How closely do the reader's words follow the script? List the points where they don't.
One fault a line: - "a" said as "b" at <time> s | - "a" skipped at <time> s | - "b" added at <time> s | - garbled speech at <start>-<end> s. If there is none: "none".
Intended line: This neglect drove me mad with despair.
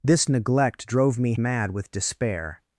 none